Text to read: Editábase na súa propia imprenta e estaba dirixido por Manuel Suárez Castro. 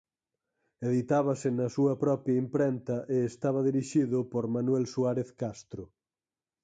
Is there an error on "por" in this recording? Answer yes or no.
no